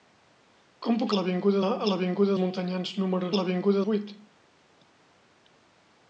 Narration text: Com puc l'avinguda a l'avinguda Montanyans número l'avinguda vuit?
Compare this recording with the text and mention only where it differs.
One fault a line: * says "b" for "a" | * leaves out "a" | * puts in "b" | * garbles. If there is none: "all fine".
all fine